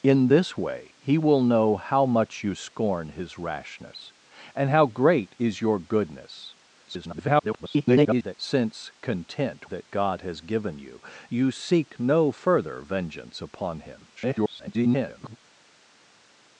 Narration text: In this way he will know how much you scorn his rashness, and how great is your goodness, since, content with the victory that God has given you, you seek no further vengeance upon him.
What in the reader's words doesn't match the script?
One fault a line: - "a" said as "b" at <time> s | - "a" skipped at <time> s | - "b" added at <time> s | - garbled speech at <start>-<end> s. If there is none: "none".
- garbled speech at 6.9-8.3 s
- "with the victory" skipped at 9.7 s
- garbled speech at 14.2-15.4 s